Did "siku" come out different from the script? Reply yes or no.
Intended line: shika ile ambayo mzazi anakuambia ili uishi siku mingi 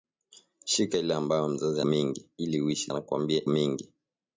yes